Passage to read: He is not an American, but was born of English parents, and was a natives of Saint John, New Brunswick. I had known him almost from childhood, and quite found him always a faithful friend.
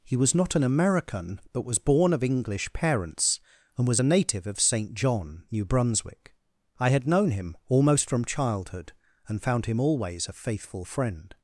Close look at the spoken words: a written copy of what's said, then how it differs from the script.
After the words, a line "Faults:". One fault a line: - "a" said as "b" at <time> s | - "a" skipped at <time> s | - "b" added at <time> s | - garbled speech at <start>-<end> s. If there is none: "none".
He was not an American, but was born of English parents, and was a native of Saint John, New Brunswick. I had known him almost from childhood, and found him always a faithful friend.
Faults:
- "is" said as "was" at 0.2 s
- "natives" said as "native" at 4.0 s
- "quite" skipped at 9.4 s